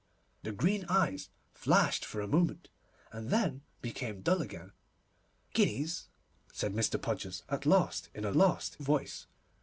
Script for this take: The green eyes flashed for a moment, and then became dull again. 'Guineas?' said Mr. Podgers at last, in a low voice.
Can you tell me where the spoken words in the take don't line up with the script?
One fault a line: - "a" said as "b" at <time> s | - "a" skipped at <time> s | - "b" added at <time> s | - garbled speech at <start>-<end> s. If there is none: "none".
- "low" said as "last" at 8.3 s